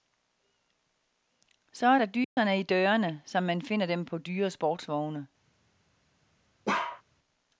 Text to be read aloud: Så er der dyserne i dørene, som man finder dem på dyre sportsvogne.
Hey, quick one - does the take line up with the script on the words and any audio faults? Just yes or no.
no